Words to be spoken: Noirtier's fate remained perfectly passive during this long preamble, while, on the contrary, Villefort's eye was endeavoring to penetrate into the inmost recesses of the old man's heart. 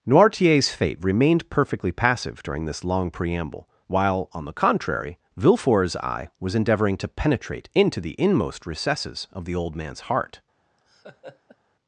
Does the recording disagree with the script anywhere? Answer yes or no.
no